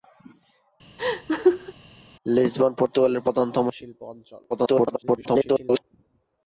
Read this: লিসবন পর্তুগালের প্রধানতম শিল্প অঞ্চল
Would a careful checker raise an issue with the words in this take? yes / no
yes